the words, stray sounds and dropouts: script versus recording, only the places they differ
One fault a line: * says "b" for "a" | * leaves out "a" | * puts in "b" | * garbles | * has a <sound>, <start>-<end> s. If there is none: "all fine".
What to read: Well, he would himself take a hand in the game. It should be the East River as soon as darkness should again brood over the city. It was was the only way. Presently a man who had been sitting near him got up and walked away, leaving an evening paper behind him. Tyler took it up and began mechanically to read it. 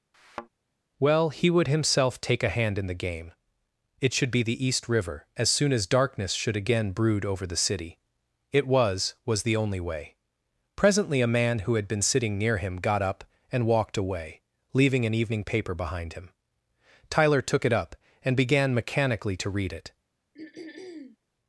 * has a thud, 0.1-0.5 s
* has a throat clearing, 20.3-21.2 s